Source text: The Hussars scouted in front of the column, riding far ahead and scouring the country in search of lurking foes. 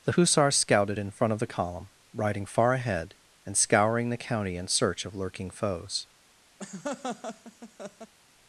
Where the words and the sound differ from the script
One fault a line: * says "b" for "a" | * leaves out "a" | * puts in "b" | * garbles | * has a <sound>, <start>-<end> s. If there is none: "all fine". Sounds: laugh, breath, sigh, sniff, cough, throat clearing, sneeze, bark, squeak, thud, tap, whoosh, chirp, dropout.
* says "county" for "country"
* has a laugh, 6.6-8.1 s